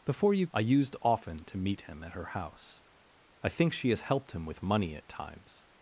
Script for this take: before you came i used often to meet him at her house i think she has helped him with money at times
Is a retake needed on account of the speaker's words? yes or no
yes